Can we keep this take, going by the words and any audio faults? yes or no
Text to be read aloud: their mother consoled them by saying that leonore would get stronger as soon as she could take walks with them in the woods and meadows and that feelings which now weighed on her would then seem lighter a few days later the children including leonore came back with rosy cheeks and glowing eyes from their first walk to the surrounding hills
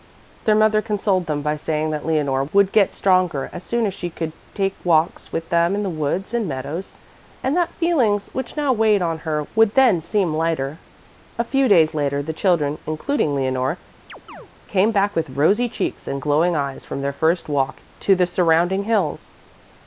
no